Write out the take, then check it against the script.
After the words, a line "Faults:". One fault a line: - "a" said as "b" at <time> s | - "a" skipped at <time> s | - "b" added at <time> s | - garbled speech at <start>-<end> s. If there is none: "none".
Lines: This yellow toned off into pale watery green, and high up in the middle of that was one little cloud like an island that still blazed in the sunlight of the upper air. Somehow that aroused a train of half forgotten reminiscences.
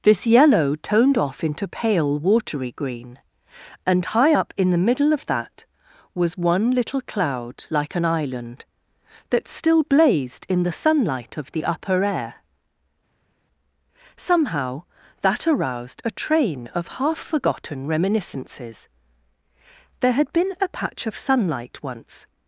This yellow toned off into pale watery green, and high up in the middle of that was one little cloud like an island that still blazed in the sunlight of the upper air. Somehow that aroused a train of half forgotten reminiscences. There had been a patch of sunlight once
Faults:
- "There had been a patch of sunlight once" added at 20.0 s